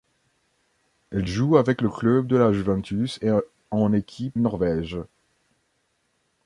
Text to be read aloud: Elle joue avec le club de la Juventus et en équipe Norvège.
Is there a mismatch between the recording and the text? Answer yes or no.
no